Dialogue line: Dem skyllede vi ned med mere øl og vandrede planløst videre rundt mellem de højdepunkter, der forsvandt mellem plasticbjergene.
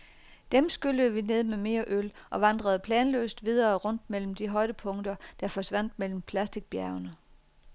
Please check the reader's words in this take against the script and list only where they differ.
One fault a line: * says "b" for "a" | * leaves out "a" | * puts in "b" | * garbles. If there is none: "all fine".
all fine